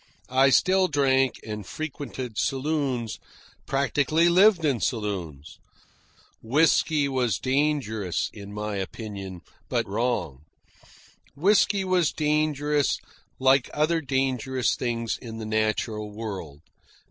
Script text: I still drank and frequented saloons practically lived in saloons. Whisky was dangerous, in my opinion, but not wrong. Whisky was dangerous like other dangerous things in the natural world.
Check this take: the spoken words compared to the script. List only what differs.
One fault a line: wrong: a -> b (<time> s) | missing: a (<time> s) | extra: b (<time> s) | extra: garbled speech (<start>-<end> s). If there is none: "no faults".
missing: not (9.9 s)